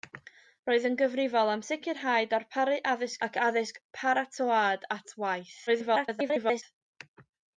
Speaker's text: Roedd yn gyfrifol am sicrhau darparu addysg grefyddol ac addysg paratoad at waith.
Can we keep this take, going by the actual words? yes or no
no